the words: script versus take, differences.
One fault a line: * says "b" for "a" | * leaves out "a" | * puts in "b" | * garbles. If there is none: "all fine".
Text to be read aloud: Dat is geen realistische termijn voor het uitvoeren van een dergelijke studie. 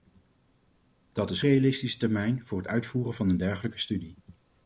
* leaves out "geen"